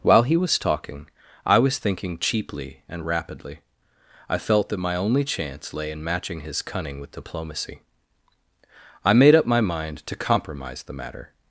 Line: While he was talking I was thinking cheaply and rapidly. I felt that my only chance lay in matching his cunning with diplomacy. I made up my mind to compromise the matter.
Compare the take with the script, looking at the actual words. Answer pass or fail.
pass